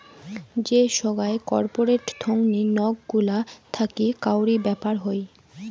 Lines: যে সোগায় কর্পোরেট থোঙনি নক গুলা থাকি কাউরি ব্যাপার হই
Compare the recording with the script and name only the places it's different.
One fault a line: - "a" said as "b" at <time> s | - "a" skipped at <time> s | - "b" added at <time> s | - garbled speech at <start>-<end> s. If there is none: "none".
none